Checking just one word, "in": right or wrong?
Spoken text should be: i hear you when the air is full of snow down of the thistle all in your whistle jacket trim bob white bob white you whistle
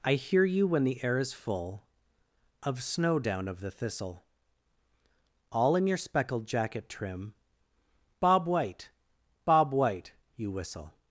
right